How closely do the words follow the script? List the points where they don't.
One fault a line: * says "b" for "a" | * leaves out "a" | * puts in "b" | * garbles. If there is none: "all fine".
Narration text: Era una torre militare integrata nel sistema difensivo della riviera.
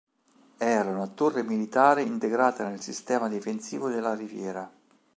all fine